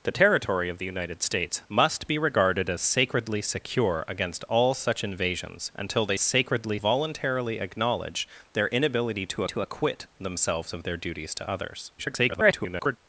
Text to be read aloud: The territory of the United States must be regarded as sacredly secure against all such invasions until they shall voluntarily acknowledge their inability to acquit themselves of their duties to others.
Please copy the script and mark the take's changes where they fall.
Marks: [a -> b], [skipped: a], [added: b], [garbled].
The territory of the United States must be regarded as sacredly secure against all such invasions until they [shall -> sacredly] voluntarily acknowledge their inability to [added: to] acquit themselves of their duties to others. [garbled]